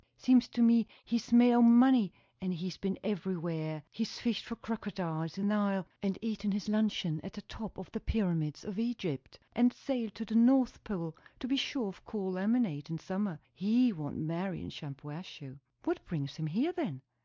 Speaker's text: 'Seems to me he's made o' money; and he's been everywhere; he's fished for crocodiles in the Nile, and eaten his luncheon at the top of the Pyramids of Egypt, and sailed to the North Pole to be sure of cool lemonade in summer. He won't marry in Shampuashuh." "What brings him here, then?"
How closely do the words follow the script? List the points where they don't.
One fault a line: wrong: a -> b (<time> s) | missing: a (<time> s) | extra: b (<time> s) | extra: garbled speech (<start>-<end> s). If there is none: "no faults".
missing: the (5.5 s)